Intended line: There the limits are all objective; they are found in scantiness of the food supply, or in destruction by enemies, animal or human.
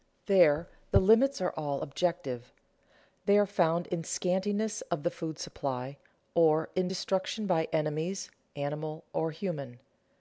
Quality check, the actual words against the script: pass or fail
pass